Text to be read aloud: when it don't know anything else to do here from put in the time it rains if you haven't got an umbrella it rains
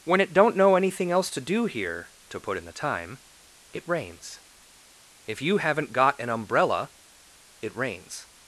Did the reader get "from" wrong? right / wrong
wrong